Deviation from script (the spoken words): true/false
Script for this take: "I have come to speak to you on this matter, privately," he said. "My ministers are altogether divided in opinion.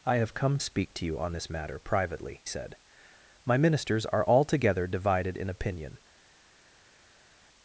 true